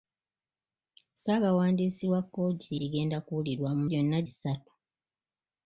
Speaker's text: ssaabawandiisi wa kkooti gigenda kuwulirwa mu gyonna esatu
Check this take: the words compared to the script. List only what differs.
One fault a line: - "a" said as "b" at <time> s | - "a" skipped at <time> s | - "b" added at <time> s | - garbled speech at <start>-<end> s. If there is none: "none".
none